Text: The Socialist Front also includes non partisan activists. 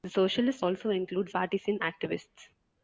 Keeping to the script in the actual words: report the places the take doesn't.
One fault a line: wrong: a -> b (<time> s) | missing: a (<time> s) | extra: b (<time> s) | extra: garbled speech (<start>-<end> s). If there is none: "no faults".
missing: Front (0.7 s)
missing: non (1.3 s)